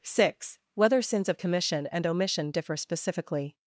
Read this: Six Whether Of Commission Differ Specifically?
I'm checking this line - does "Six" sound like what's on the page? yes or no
yes